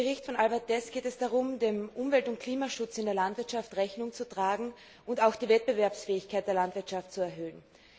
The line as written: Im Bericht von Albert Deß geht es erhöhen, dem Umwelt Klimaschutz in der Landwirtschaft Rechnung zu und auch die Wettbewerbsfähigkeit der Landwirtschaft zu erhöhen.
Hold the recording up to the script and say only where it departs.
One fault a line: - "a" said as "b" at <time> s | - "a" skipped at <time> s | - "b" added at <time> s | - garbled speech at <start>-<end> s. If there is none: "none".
- "erhöhen" said as "darum" at 1.2 s
- "und" added at 2.3 s
- "tragen" added at 4.3 s